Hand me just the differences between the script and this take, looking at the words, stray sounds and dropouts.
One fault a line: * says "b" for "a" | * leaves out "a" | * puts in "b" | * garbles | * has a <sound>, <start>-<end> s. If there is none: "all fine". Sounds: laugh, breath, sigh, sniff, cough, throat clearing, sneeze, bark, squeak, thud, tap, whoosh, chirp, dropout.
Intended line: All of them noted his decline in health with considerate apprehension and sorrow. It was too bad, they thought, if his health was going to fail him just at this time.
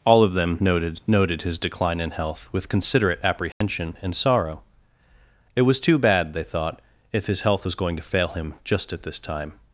* puts in "noted"
* has a dropout, 3.5-3.6 s